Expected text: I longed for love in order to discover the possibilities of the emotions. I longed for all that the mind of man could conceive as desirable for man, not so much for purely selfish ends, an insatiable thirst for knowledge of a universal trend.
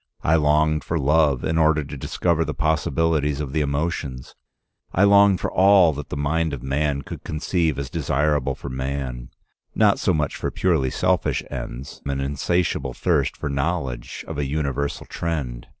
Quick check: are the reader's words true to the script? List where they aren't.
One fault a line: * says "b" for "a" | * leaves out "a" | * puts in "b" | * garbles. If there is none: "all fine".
all fine